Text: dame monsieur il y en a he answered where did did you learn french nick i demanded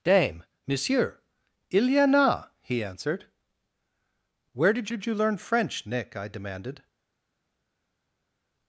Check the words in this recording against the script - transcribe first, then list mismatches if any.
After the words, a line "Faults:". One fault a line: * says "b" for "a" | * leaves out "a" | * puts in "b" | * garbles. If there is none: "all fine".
dame monsieur il y en a he answered where did did you learn french nick i demanded
Faults:
all fine